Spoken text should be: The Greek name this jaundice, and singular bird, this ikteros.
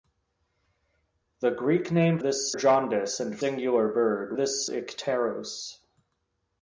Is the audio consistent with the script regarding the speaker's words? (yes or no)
yes